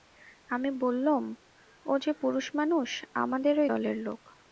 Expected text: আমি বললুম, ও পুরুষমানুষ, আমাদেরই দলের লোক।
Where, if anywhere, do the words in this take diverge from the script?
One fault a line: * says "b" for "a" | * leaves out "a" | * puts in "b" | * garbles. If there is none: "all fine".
* puts in "যে"